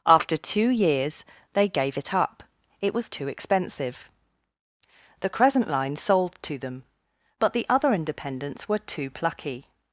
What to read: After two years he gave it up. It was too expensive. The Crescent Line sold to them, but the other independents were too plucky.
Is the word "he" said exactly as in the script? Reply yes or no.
no